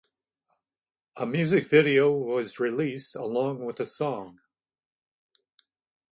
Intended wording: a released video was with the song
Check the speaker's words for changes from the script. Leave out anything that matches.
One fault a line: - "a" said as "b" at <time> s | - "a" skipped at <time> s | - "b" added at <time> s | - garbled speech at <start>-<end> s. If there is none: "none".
- "released" said as "music" at 1.3 s
- "released along" added at 2.6 s